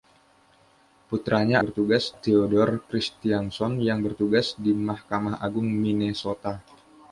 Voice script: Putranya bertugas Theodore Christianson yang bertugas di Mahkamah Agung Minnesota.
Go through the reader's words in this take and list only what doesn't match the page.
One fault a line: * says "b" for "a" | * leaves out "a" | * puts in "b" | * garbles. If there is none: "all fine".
all fine